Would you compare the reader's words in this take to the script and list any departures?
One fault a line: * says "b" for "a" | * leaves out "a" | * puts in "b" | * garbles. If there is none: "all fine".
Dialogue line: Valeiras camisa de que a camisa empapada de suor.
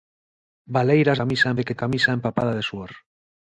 all fine